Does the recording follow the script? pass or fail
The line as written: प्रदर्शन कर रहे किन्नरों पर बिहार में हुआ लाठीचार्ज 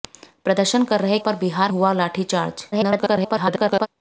fail